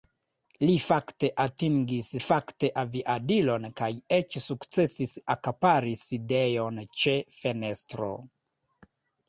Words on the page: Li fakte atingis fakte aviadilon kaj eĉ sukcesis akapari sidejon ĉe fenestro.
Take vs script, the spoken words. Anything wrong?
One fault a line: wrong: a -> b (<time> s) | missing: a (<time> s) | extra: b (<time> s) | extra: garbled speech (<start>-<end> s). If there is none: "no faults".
no faults